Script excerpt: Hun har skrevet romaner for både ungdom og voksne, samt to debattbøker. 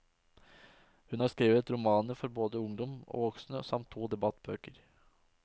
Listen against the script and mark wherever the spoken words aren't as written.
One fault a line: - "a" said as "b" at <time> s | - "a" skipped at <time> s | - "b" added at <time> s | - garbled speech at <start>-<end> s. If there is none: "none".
none